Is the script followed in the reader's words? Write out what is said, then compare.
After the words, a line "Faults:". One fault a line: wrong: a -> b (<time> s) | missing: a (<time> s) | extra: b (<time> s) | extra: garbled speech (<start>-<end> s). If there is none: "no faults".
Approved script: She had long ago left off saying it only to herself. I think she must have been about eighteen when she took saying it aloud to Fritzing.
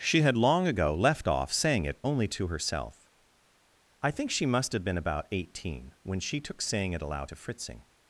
She had long ago left off saying it only to herself. I think she must have been about eighteen when she took saying it aloud to Fritzing.
Faults:
no faults